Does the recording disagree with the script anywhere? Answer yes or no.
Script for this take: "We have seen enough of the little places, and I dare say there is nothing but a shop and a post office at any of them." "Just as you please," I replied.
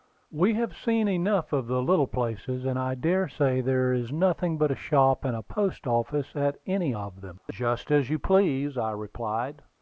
no